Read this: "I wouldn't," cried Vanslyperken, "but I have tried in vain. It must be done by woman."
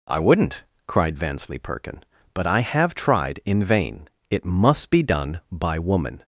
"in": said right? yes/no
yes